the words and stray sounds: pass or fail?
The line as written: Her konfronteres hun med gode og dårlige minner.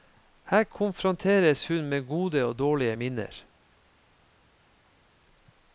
pass